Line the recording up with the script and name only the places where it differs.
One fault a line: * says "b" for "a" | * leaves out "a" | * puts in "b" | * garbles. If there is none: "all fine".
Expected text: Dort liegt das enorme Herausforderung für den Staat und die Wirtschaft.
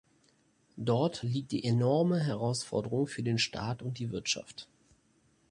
* says "die" for "das"